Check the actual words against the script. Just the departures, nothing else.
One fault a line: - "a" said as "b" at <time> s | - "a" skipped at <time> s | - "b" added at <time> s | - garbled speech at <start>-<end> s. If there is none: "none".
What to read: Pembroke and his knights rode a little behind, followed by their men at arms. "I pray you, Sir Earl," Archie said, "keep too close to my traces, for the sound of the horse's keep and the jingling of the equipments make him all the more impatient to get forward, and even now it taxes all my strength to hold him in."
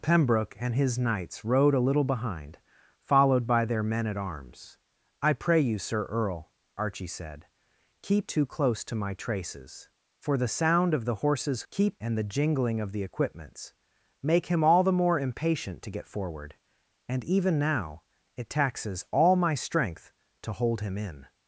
none